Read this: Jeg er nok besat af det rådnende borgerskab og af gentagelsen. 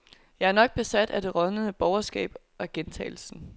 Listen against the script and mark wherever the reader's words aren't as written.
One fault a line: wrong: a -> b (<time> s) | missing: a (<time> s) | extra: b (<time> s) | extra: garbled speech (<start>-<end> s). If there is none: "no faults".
missing: og (2.4 s)